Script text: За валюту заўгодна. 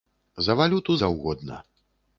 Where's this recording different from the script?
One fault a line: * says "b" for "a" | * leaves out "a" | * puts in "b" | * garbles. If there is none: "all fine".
all fine